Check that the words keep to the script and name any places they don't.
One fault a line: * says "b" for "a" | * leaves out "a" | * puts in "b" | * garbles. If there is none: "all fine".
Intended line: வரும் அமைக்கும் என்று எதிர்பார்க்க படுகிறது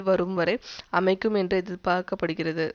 * puts in "வரை"